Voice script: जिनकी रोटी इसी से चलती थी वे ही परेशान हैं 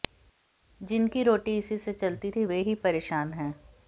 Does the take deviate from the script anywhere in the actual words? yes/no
no